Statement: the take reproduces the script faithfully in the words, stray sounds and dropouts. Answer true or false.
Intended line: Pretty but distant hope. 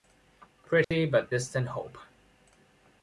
false